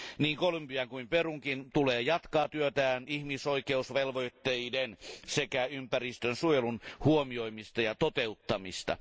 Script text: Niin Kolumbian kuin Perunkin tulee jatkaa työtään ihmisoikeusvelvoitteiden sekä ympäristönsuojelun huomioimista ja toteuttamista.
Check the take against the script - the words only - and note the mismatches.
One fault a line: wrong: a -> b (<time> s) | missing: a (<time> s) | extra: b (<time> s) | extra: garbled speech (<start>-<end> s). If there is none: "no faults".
no faults